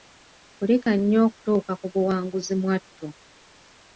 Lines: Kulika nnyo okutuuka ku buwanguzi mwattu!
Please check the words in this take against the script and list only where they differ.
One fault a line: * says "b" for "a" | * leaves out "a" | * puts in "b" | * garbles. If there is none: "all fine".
all fine